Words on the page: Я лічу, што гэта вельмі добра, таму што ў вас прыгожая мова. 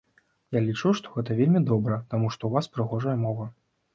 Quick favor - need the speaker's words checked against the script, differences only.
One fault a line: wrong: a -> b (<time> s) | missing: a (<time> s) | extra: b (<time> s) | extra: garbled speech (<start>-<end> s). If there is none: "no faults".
no faults